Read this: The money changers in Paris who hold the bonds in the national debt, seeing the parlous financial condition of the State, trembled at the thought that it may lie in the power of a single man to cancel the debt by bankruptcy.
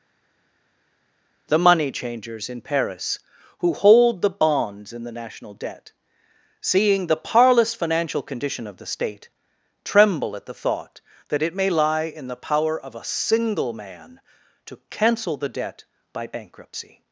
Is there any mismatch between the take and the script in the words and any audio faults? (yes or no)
yes